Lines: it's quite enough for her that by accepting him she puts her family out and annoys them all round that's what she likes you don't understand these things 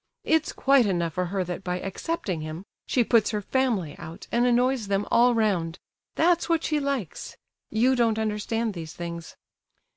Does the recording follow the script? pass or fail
pass